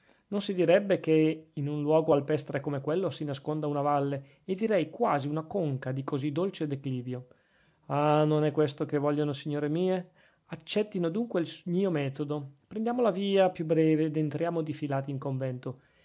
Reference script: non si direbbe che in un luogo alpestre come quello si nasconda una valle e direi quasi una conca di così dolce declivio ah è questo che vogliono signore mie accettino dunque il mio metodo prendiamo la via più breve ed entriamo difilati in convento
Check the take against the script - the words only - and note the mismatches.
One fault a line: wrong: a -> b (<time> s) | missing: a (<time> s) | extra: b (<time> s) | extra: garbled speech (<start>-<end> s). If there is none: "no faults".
extra: non (8.2 s)